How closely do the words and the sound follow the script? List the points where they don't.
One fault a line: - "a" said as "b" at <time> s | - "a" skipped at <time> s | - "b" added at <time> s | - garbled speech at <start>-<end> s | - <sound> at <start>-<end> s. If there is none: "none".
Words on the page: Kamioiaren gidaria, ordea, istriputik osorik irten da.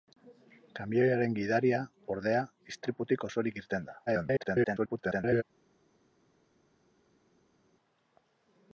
- garbled speech at 4.1-5.4 s